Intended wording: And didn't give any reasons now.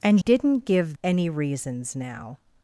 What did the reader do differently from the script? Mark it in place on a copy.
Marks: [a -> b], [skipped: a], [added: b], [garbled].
And didn't give any reasons now.